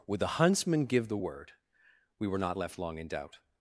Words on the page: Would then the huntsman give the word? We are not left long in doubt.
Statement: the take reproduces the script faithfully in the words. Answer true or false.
false